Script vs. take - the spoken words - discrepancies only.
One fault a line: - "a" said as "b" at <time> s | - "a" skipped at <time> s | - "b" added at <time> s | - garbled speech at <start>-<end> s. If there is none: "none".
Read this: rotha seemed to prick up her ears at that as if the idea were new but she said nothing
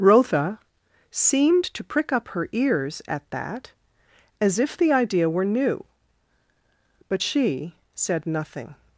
none